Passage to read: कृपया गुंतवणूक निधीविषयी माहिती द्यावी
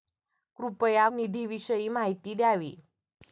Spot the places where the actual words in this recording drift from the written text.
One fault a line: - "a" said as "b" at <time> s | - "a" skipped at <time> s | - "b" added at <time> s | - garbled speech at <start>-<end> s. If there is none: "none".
- "गुंतवणूक" skipped at 1.0 s